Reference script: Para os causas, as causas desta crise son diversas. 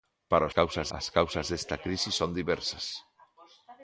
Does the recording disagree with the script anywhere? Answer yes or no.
no